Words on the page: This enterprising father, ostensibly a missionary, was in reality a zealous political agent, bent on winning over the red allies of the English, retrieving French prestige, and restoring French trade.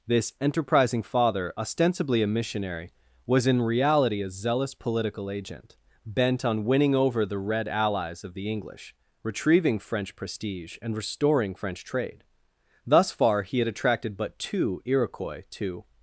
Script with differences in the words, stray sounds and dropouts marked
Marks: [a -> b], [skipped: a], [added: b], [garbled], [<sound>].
This enterprising father, ostensibly a missionary, was in reality a zealous political agent, bent on winning over the red allies of the English, retrieving French prestige, and restoring French trade. [added: Thus far he had attracted but two Iroquois to]